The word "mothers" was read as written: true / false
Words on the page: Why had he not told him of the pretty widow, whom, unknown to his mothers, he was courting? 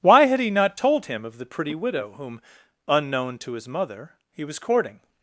false